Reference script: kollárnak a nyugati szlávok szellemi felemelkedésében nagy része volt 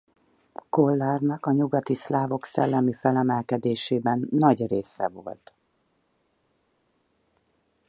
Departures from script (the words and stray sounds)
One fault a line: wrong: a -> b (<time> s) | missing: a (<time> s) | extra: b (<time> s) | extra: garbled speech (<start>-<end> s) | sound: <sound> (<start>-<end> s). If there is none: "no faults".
no faults